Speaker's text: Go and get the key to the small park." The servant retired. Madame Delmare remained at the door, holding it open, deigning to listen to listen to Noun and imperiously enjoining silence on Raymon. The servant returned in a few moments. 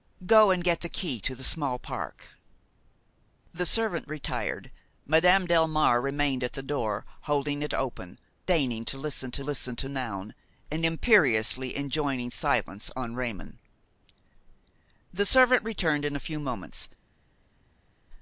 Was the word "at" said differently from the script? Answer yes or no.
no